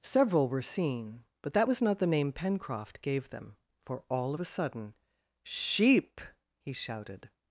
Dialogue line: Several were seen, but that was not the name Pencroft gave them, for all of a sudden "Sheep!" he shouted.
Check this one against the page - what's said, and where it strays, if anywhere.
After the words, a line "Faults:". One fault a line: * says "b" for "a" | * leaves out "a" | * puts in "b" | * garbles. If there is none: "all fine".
Several were seen, but that was not the name Pencroft gave them, for all of a sudden "Sheep!" he shouted.
Faults:
all fine